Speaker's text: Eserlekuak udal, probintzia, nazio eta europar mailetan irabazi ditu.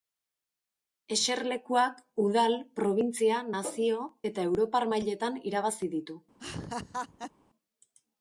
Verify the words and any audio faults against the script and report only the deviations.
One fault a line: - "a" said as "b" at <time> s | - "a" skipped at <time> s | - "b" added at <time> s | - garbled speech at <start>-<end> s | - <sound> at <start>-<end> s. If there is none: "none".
- laugh at 6.4-7.3 s